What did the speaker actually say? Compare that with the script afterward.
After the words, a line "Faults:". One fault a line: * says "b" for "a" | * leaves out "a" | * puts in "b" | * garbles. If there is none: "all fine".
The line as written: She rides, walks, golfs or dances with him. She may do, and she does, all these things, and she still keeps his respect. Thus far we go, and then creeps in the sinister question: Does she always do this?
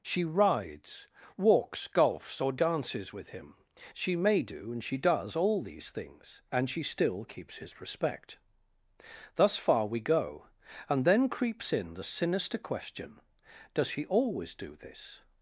She rides, walks, golfs or dances with him. She may do, and she does, all these things, and she still keeps his respect. Thus far we go, and then creeps in the sinister question: Does she always do this?
Faults:
all fine